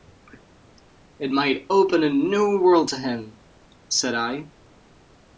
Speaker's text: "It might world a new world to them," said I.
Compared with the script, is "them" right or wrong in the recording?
wrong